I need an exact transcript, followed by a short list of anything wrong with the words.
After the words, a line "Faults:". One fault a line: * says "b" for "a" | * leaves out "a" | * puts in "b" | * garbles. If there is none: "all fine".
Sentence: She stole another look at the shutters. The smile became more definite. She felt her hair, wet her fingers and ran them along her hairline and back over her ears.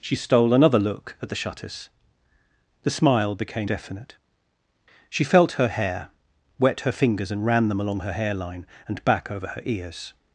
She stole another look at the shutters. The smile became definite. She felt her hair, wet her fingers and ran them along her hairline and back over her ears.
Faults:
* leaves out "more"